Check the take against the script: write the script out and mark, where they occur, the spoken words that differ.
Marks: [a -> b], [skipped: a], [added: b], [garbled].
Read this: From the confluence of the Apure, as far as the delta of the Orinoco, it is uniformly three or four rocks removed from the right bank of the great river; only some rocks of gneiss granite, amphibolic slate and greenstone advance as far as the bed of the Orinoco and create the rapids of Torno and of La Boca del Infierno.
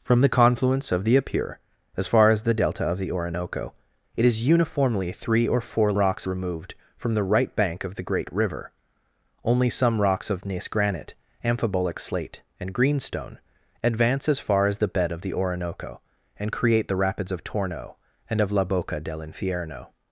From the confluence of the Apure, as far as the delta of the Orinoco, it is uniformly three or four rocks removed from the right bank of the great river; only some rocks of gneiss granite, amphibolic slate and greenstone advance as far as the bed of the Orinoco and create the rapids of Torno and of La Boca del Infierno.